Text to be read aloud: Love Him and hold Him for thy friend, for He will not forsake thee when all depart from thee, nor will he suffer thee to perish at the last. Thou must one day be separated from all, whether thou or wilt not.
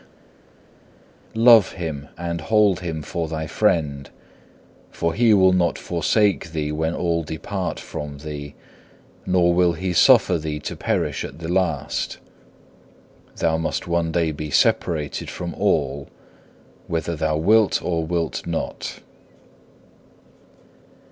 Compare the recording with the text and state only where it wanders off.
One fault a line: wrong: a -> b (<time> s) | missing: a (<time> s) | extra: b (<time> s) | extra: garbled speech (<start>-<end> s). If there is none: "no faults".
extra: wilt (17.4 s)